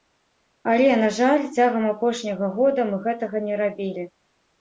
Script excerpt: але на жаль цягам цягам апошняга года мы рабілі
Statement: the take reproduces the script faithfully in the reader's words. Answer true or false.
false